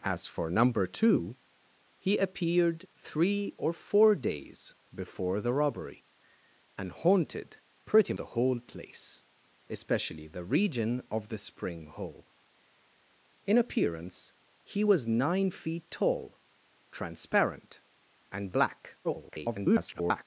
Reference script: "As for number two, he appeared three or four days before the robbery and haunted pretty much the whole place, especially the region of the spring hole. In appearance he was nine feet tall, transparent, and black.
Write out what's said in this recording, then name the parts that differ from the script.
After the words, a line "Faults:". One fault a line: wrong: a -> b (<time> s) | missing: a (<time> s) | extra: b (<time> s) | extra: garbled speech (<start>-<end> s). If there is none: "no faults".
"As for number two, he appeared three or four days before the robbery and haunted pretty the whole place, especially the region of the spring hole. In appearance he was nine feet tall, transparent, and black. [garbled]
Faults:
missing: much (8.1 s)
extra: garbled speech (19.0-20.3 s)